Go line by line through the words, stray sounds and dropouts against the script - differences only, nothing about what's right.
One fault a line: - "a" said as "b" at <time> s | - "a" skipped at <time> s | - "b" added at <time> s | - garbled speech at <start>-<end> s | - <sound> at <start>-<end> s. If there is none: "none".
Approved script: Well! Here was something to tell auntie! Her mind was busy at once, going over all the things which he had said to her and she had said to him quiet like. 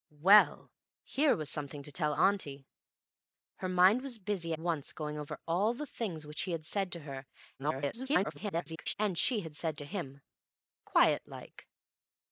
- "at" skipped at 4.5 s
- garbled speech at 7.6-8.9 s